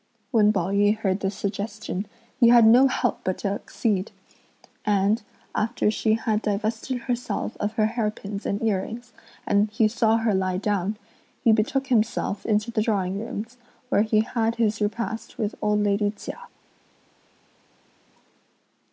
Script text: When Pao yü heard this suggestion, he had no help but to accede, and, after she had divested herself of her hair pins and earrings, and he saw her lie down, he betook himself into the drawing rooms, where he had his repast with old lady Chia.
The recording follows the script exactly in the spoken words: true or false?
true